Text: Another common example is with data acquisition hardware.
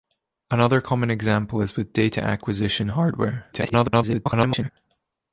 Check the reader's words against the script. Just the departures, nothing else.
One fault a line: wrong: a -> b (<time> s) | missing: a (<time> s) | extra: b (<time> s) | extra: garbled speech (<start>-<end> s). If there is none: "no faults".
extra: garbled speech (3.5-4.7 s)